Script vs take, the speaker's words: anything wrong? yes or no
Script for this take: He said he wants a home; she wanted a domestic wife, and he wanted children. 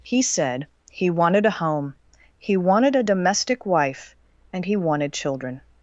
yes